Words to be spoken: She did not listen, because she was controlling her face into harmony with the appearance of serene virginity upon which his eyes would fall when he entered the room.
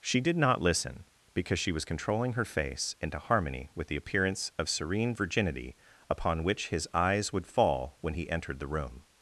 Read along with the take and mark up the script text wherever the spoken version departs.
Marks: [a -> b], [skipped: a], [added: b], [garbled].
She did not listen, because she was controlling her face into harmony with the appearance of serene virginity upon which his eyes would fall when he entered the room.